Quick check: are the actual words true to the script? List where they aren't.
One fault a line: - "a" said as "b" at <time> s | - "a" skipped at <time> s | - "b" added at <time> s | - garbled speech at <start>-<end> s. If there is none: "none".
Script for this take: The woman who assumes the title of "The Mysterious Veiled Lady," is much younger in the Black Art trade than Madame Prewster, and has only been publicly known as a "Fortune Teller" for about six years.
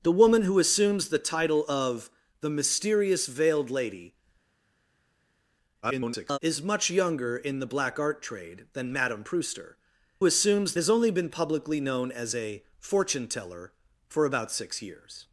- garbled speech at 5.8-6.4 s
- "and" said as "assumes" at 10.2 s